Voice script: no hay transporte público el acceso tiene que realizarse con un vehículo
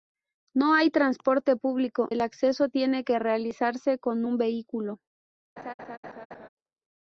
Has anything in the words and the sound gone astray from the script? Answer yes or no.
yes